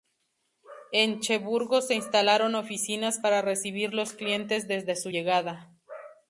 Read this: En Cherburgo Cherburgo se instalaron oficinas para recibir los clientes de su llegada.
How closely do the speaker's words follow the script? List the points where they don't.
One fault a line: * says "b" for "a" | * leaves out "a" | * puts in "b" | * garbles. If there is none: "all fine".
* leaves out "Cherburgo"
* says "desde" for "de"